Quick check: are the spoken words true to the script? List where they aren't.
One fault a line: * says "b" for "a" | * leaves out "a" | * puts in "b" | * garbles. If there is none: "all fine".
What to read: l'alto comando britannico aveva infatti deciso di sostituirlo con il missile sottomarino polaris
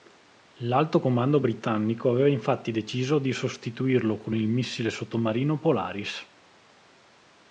all fine